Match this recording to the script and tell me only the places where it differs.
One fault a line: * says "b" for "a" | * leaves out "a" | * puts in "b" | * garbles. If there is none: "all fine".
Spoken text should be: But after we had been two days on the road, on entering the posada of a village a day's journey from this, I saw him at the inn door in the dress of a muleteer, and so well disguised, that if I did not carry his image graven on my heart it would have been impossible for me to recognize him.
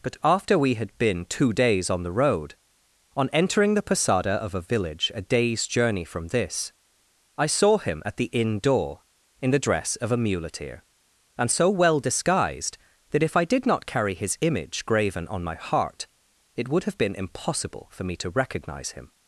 all fine